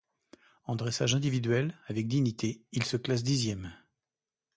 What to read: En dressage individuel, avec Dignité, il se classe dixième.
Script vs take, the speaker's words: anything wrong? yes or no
no